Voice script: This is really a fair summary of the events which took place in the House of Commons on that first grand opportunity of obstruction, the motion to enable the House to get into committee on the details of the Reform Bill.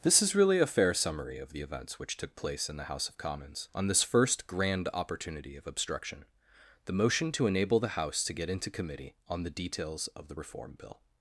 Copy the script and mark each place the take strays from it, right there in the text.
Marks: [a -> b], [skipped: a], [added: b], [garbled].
This is really a fair summary of the events which took place in the House of Commons on [that -> this] first grand opportunity of obstruction, the motion to enable the House to get into committee on the details of the Reform Bill.